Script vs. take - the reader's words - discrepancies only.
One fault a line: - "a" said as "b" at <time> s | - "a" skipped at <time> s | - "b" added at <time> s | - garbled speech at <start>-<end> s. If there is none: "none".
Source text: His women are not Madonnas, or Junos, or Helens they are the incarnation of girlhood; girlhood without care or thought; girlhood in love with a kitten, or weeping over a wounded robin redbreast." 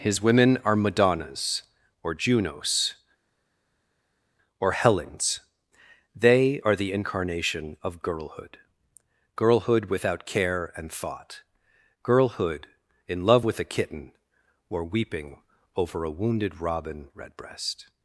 - "not" skipped at 0.8 s
- "or" said as "and" at 10.8 s